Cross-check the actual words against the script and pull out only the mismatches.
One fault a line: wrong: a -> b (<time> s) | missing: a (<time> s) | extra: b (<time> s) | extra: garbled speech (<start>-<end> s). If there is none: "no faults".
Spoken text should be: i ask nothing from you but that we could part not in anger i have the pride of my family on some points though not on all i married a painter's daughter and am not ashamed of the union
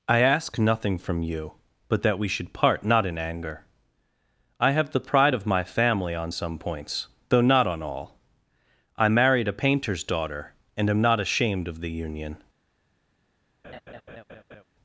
wrong: could -> should (2.3 s)